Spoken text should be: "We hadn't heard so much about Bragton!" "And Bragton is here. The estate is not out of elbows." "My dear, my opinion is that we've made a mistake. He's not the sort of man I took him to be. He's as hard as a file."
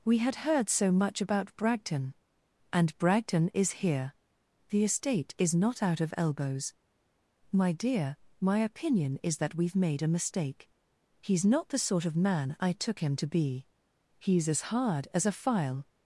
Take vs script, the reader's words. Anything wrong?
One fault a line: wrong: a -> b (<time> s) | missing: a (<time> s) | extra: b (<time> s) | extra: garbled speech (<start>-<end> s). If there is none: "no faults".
wrong: hadn't -> had (0.2 s)